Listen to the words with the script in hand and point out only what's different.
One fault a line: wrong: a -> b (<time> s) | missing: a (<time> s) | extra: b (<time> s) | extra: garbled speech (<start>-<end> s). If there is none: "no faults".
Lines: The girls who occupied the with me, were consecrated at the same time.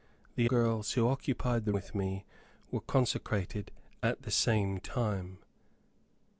no faults